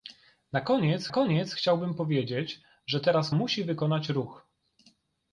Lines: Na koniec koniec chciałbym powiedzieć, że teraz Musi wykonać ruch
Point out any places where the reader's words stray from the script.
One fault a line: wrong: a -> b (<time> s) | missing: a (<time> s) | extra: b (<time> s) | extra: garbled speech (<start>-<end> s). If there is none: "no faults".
no faults